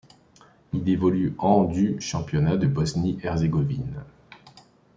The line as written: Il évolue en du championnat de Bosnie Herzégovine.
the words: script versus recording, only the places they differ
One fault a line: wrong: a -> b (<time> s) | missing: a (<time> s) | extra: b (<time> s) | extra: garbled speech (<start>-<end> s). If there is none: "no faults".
no faults